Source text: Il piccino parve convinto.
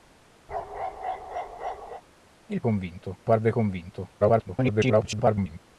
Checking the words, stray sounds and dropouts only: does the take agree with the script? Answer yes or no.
no